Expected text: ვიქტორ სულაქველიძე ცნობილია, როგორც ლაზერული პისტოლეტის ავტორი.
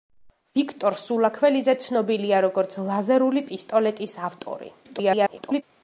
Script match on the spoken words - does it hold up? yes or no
no